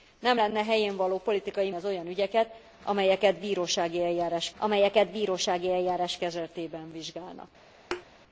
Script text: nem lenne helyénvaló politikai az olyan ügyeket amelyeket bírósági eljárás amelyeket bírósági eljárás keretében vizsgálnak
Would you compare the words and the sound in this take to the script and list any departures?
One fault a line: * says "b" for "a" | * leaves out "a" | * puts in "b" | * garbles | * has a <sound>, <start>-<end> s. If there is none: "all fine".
* has a thud, 7.9-8.1 s